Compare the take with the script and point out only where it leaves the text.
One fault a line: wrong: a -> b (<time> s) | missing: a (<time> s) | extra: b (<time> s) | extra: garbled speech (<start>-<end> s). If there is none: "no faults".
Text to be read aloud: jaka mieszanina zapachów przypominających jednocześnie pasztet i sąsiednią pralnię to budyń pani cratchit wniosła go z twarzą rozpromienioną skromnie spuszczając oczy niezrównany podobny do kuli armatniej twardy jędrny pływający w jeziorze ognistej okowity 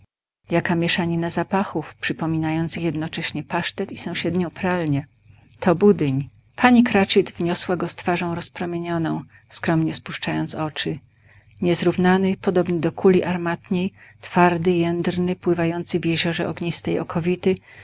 no faults